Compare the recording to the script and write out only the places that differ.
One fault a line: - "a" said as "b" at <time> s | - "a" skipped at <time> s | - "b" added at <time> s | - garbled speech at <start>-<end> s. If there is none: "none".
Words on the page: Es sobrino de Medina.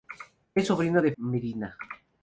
none